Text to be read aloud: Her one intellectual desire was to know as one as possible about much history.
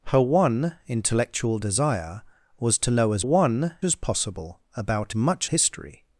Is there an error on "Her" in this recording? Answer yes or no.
no